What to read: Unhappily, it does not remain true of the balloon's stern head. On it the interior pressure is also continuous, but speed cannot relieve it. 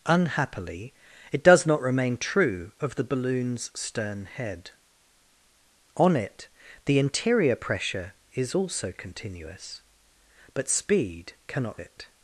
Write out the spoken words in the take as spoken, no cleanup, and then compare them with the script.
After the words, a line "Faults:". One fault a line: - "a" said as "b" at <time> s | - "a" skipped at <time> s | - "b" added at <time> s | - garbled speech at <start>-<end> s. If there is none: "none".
Unhappily, it does not remain true of the balloon's stern head. On it the interior pressure is also continuous, but speed cannot it.
Faults:
- "relieve" skipped at 11.8 s